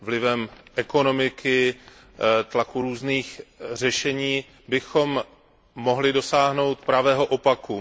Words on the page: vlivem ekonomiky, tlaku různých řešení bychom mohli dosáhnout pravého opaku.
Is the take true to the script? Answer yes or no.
yes